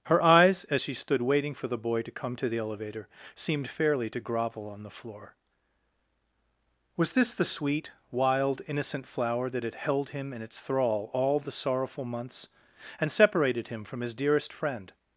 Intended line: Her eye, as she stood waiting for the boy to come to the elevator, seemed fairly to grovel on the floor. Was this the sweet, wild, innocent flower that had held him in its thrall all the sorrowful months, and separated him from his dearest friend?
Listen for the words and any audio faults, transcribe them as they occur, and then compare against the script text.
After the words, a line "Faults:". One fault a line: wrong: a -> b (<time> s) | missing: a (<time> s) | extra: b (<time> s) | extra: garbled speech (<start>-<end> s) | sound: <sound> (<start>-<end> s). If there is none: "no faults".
Her eyes, as she stood waiting for the boy to come to the elevator, seemed fairly to grovel on the floor. Was this the sweet, wild, innocent flower that had held him in its thrall all the sorrowful months, and separated him from his dearest friend?
Faults:
wrong: eye -> eyes (0.2 s)